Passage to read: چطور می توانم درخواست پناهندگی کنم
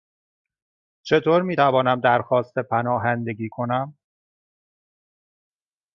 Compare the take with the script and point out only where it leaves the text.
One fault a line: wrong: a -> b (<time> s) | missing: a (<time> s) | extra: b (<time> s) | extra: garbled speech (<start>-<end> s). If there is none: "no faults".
no faults